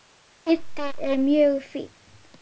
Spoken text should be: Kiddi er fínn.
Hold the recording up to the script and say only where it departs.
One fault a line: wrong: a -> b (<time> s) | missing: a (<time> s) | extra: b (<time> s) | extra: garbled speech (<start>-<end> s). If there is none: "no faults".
extra: mjög (1.2 s)